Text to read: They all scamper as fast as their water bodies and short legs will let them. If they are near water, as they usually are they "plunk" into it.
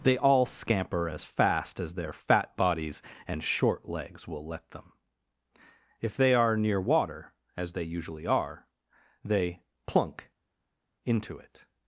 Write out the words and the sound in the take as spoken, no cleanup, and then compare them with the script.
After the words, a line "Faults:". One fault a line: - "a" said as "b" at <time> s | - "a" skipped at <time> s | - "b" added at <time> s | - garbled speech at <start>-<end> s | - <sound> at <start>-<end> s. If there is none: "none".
They all scamper as fast as their fat bodies and short legs will let them. If they are near water, as they usually are they "plunk" into it.
Faults:
- "water" said as "fat" at 2.1 s